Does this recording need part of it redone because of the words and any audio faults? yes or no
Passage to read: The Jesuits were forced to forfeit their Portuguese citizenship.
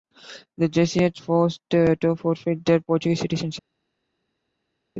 yes